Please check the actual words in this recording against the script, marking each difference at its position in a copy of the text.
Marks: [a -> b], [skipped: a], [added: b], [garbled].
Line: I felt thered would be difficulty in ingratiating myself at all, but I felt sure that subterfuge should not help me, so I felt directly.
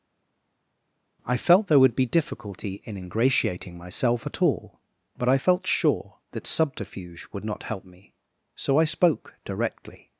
I felt [thered -> there] would be difficulty in ingratiating myself at all, but I felt sure that subterfuge [should -> would] not help me, so I [felt -> spoke] directly.